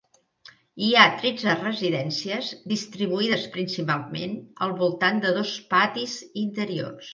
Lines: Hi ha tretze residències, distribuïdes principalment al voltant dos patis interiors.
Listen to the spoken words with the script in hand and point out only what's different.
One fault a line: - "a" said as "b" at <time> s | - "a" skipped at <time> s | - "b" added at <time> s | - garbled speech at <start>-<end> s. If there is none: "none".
- "de" added at 5.3 s